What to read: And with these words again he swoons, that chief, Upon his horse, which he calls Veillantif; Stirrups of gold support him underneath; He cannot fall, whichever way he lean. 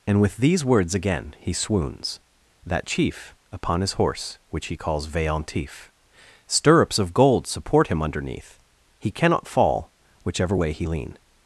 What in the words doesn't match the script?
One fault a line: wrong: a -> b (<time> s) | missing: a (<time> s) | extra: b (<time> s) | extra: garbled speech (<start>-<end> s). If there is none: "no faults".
no faults